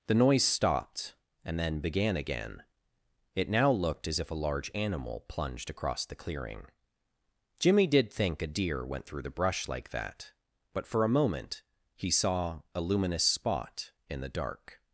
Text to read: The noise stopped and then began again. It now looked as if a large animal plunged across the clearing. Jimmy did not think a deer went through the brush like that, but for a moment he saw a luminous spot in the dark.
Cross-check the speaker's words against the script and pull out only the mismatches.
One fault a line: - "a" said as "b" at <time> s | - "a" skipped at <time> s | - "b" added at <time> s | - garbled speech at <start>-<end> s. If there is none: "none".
- "not" skipped at 8.1 s